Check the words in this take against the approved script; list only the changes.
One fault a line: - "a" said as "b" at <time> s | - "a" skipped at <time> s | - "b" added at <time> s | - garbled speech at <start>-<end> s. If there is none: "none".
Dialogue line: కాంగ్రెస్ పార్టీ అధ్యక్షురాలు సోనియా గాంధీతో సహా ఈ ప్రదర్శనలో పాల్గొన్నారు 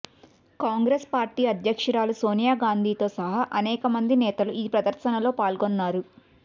- "అనేక మంది నేతలు" added at 3.6 s